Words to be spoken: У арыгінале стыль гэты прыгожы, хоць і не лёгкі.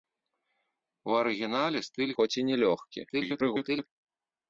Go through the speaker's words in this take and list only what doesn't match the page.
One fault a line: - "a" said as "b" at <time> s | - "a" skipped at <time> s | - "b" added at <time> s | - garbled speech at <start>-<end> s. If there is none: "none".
- "гэты прыгожы" skipped at 2.1 s
- garbled speech at 3.1-3.9 s